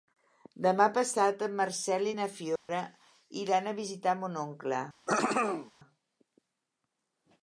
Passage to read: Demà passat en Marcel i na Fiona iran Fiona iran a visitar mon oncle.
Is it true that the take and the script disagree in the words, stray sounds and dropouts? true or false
true